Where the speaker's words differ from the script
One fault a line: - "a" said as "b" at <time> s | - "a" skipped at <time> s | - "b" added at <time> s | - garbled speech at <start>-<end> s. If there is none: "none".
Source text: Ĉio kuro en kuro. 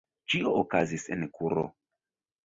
- "kuro" said as "okazis" at 0.6 s